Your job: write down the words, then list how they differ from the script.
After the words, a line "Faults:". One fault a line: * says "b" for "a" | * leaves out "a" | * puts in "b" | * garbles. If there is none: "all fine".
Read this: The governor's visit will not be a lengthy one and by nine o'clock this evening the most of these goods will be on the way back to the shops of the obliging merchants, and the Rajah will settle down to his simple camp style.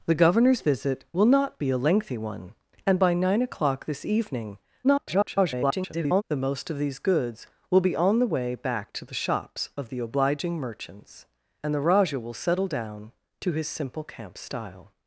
The governor's visit will not be a lengthy one and by nine o'clock this evening [garbled] the most of these goods will be on the way back to the shops of the obliging merchants, and the Rajah will settle down to his simple camp style.
Faults:
* garbles